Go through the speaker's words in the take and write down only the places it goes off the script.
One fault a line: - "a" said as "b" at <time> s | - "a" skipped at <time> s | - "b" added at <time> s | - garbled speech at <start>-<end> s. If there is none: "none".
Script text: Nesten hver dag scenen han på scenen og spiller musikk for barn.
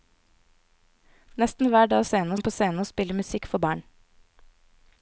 none